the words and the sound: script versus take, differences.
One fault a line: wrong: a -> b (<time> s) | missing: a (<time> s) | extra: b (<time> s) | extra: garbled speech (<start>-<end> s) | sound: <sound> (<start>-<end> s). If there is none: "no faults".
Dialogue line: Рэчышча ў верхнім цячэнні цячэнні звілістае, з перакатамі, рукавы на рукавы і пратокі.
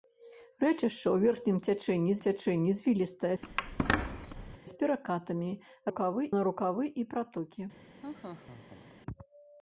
sound: squeak (3.4-4.6 s)
sound: laugh (8.0-9.0 s)